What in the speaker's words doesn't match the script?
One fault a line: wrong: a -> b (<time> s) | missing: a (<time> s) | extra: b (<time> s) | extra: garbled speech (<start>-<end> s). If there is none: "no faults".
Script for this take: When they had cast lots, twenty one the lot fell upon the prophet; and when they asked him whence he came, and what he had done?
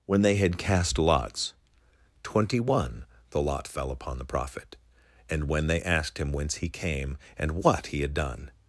no faults